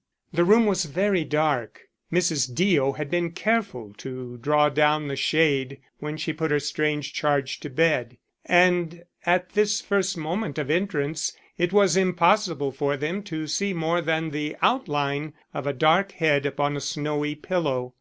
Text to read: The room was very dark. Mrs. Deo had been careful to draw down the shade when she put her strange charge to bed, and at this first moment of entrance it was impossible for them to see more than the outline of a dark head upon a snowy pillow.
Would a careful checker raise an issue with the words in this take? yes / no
no